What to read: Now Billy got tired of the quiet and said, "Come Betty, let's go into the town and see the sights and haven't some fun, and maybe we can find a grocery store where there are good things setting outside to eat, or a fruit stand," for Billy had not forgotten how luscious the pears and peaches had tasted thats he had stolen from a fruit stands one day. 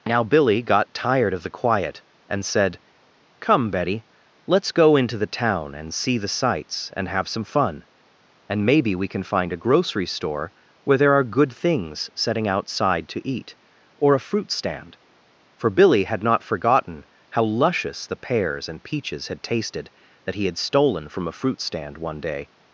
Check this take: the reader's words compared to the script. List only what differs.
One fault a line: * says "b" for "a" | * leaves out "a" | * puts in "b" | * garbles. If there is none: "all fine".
* says "have" for "haven't"
* says "that" for "thats"
* says "stand" for "stands"